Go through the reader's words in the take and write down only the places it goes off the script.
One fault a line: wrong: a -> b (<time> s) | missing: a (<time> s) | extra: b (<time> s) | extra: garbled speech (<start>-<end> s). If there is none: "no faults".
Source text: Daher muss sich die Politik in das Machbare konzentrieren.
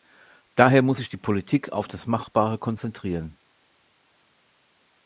wrong: in -> auf (1.7 s)